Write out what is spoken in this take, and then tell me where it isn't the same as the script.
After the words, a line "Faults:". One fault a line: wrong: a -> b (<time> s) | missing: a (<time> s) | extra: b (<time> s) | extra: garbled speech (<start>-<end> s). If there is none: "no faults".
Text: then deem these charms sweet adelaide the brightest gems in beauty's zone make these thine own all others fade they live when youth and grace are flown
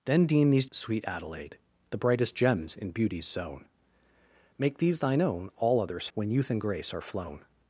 then deem these sweet adelaide the brightest gems in beauty's zone make these thine own all others when youth and grace are flown
Faults:
missing: charms (0.7 s)
missing: fade they live (6.1 s)